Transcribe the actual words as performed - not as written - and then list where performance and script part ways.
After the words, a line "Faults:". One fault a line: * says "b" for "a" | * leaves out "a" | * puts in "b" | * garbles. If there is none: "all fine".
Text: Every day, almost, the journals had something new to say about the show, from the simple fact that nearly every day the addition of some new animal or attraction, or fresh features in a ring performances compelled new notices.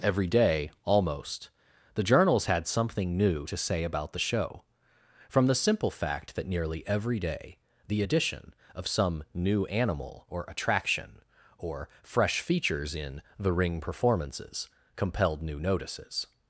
Every day, almost, the journals had something new to say about the show, from the simple fact that nearly every day the addition of some new animal or attraction, or fresh features in the ring performances compelled new notices.
Faults:
* says "the" for "a"